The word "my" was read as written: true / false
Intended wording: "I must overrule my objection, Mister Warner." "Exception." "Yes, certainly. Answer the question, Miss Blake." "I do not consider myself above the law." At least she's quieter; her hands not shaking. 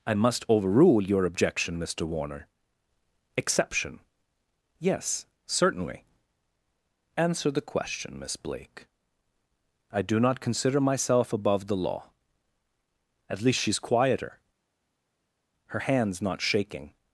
false